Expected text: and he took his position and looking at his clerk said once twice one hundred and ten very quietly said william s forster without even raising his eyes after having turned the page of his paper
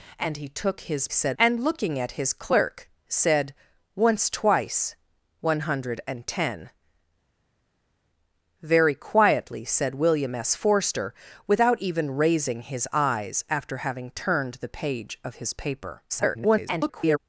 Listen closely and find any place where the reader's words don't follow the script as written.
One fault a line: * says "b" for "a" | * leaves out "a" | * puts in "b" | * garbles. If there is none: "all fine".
* says "said" for "position"
* garbles